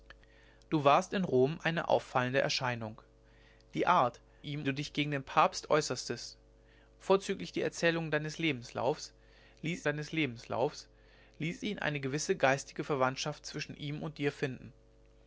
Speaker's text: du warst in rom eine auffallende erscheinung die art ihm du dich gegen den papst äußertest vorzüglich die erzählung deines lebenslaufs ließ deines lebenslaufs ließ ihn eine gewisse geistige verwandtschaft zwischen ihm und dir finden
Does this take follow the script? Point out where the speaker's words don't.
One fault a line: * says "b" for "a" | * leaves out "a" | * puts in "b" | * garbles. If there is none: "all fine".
all fine